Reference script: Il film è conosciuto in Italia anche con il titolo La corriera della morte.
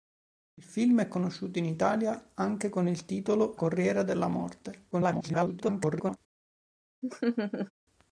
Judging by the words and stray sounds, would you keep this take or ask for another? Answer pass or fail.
fail